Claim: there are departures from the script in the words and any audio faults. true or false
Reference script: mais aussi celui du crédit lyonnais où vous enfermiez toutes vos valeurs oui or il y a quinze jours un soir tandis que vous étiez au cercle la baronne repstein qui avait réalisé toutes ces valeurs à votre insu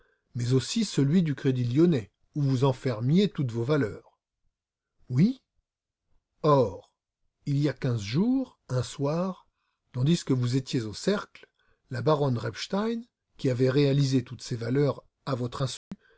true